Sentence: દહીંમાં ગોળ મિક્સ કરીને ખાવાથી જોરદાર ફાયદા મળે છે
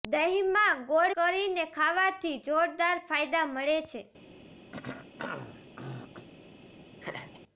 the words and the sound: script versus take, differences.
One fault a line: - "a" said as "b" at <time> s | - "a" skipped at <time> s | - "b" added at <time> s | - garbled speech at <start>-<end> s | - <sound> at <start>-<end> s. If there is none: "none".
- "મિક્સ" skipped at 1.1 s
- throat clearing at 4.7-6.3 s
- laugh at 7.0-7.4 s